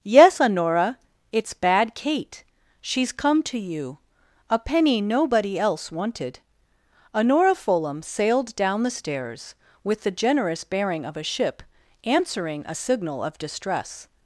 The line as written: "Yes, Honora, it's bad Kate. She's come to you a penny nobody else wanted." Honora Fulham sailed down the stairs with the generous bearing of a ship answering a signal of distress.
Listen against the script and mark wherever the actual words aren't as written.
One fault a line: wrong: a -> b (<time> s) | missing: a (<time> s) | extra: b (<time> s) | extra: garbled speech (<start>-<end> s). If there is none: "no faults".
no faults